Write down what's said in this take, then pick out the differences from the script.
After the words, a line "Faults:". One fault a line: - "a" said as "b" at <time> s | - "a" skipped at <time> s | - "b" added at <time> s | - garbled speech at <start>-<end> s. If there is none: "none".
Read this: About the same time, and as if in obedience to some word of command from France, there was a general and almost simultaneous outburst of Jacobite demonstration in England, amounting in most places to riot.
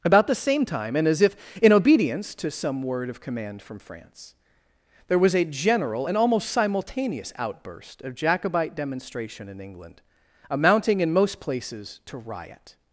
About the same time, and as if in obedience to some word of command from France, there was a general and almost simultaneous outburst of Jacobite demonstration in England, amounting in most places to riot.
Faults:
none